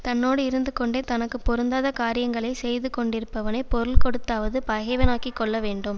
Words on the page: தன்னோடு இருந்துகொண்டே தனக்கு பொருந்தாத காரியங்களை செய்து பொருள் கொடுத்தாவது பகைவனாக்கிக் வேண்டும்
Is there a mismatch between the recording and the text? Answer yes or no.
yes